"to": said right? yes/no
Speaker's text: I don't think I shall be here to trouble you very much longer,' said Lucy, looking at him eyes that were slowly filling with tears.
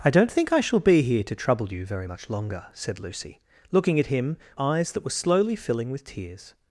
yes